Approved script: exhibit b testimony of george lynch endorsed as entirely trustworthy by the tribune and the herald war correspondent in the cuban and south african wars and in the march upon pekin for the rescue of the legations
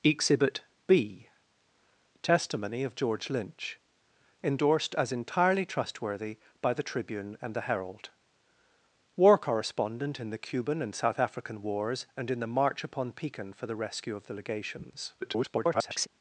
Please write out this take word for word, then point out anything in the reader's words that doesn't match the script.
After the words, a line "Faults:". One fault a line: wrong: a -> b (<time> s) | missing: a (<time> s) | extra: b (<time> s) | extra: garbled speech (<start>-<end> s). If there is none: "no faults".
exhibit b testimony of george lynch endorsed as entirely trustworthy by the tribune and the herald war correspondent in the cuban and south african wars and in the march upon pekin for the rescue of the legations [garbled]
Faults:
extra: garbled speech (15.2-16.1 s)